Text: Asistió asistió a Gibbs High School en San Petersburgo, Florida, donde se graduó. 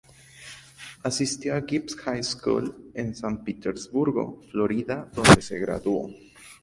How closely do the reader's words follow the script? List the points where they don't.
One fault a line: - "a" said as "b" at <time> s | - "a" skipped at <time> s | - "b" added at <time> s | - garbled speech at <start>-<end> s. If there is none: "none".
- "asistió" skipped at 1.5 s